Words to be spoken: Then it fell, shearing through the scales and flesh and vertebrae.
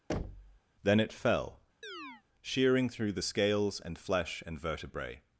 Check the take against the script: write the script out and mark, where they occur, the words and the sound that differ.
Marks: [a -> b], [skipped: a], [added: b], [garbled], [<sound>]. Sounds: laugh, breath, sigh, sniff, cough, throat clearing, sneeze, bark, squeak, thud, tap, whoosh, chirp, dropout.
[thud] Then it fell, [chirp] shearing through the scales and flesh and vertebrae.